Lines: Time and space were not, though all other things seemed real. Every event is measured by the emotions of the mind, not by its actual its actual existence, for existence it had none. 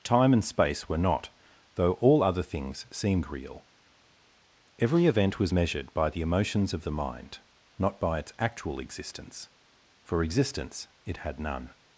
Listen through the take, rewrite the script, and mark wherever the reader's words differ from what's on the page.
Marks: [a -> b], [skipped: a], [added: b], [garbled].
Time and space were not, though all other things seemed real. Every event [is -> was] measured by the emotions of the mind, not by its actual [skipped: its actual] existence, for existence it had none.